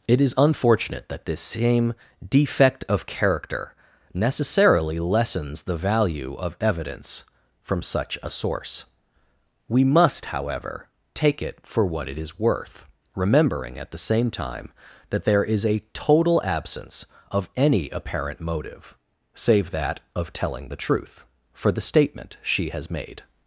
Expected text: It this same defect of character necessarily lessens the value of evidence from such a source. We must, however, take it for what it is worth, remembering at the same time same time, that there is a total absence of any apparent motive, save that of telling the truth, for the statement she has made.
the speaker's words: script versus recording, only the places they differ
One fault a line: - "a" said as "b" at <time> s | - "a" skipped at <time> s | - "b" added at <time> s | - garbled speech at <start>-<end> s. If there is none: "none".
- "is unfortunate that" added at 0.2 s
- "same time" skipped at 14.7 s